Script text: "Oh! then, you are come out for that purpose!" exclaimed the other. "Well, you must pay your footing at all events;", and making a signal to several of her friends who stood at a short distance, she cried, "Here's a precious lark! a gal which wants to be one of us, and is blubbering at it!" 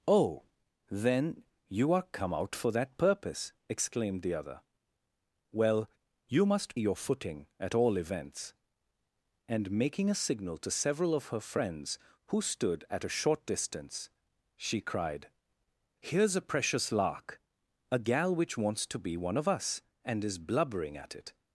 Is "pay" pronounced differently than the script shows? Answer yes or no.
yes